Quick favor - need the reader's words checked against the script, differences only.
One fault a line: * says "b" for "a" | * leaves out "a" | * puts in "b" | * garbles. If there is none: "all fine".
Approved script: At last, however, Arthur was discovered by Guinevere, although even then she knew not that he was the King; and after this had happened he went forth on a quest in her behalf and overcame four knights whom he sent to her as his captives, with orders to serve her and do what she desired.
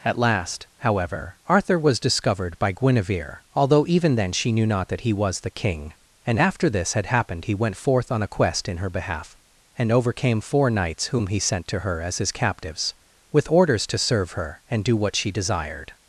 all fine